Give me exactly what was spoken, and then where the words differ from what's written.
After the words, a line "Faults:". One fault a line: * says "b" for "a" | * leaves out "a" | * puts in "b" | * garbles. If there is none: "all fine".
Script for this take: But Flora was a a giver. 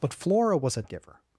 But Flora was a a giver.
Faults:
all fine